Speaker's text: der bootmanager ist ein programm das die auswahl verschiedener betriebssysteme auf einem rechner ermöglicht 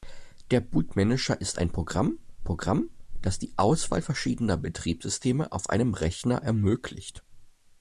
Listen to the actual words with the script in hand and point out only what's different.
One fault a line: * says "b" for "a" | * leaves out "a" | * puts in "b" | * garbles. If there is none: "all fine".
* puts in "programm"